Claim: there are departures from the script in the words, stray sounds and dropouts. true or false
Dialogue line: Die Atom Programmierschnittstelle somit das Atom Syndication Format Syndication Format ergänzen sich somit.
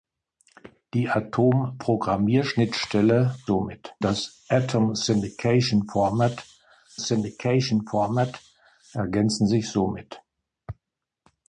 false